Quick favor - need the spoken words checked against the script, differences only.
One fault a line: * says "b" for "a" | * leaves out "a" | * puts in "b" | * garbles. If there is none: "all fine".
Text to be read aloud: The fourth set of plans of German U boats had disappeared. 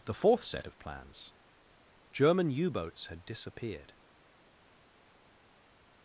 * leaves out "of"